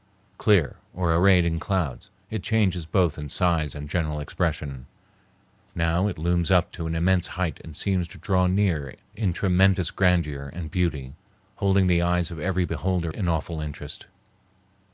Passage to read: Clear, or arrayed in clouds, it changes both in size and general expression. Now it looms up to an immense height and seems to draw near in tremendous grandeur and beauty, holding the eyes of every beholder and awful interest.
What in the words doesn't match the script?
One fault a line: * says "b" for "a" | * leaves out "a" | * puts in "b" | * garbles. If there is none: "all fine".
all fine